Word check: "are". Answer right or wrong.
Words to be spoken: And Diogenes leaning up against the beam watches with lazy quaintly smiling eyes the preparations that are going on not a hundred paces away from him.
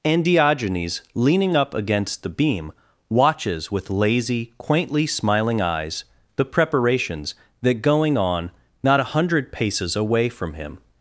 wrong